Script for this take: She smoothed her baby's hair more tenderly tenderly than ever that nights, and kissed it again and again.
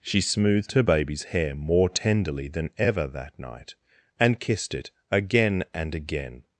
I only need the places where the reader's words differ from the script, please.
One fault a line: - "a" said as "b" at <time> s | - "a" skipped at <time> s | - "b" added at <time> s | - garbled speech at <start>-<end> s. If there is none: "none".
- "tenderly" skipped at 2.5 s
- "nights" said as "night" at 3.4 s